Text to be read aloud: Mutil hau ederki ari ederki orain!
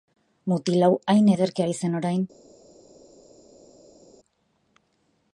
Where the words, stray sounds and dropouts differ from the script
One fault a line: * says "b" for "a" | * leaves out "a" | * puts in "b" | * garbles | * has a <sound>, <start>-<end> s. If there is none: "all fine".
* puts in "hain"
* says "zen" for "ederki"